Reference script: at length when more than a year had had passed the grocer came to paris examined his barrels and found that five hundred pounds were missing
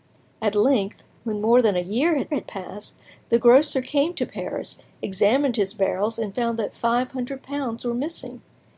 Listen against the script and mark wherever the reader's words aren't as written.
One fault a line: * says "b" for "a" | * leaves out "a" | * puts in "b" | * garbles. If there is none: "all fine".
all fine